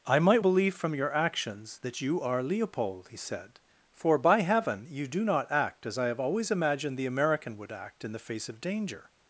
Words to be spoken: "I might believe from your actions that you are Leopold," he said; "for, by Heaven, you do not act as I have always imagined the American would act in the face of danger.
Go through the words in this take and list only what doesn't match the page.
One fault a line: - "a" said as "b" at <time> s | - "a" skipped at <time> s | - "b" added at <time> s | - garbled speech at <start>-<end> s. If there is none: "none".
none